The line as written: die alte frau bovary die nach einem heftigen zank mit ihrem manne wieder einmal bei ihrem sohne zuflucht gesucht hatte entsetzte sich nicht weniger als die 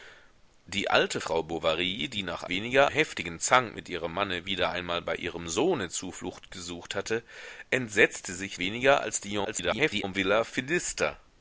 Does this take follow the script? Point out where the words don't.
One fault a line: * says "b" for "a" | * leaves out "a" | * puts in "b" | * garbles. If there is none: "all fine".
* says "weniger" for "einem"
* leaves out "nicht"
* garbles